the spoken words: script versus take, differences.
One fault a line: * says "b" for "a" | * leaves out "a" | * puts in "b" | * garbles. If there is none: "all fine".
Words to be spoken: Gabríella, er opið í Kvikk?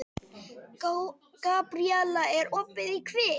all fine